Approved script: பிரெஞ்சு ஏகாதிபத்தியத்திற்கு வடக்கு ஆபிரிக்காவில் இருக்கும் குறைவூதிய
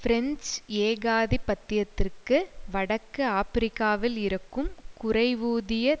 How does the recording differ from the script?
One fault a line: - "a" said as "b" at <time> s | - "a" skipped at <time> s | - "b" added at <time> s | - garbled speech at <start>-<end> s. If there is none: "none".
none